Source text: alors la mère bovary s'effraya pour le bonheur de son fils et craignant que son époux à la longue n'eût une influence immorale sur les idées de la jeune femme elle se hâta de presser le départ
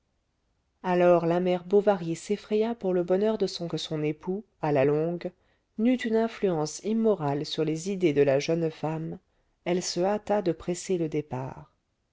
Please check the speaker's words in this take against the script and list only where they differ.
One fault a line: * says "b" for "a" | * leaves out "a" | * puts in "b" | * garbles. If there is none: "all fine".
* leaves out "fils et craignant"